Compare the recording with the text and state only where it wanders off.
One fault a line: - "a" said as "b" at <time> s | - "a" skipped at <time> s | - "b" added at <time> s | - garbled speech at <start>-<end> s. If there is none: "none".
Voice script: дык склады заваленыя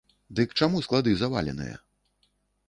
- "чаму" added at 0.6 s